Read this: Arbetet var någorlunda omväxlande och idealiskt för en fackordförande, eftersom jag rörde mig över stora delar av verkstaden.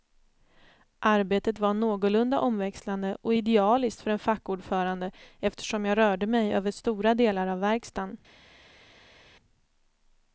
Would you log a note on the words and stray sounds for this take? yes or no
no